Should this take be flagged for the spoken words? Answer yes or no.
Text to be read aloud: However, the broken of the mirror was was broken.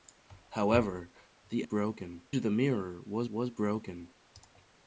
no